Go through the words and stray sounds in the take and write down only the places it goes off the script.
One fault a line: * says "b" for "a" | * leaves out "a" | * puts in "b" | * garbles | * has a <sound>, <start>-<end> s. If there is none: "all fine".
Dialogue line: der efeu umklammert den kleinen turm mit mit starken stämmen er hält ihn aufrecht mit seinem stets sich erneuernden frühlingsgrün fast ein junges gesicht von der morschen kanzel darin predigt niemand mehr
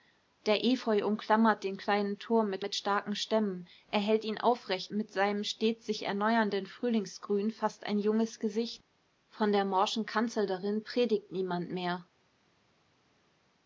all fine